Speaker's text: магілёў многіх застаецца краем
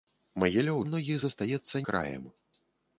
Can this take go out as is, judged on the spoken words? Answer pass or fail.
pass